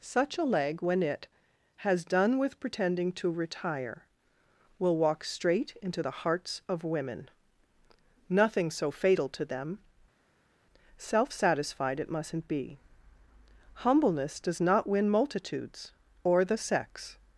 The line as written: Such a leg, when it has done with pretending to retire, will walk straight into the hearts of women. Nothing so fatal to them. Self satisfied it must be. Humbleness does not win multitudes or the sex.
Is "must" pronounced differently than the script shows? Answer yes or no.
yes